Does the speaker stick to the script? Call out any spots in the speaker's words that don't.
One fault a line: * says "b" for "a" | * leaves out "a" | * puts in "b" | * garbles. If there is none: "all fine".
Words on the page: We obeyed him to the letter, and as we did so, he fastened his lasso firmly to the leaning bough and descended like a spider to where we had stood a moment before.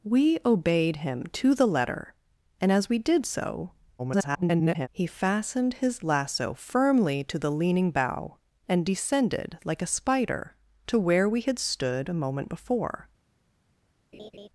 * garbles